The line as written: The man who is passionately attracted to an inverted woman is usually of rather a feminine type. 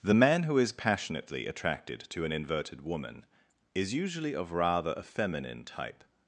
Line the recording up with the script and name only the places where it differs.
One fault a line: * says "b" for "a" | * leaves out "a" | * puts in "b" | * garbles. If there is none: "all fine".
all fine